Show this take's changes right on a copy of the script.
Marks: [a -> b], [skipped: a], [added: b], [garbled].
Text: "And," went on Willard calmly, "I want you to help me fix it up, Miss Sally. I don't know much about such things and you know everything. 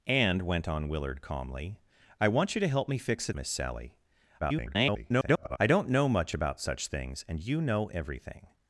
"And," went on Willard calmly, "I want you to help me fix it [skipped: up,] Miss Sally. [garbled] I don't know much about such things and you know everything.